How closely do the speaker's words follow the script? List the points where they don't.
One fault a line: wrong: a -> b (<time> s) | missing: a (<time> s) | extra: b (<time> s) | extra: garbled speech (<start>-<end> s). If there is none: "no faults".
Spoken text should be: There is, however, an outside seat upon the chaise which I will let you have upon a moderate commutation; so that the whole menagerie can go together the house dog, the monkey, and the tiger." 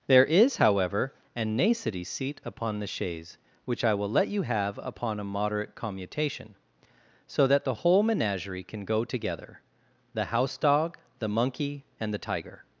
wrong: outside -> nacity (1.6 s)